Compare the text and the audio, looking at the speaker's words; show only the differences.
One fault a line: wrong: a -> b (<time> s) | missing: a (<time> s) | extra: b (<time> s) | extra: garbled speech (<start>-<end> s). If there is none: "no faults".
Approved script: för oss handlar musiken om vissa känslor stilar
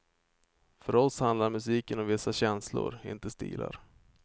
extra: inte (3.0 s)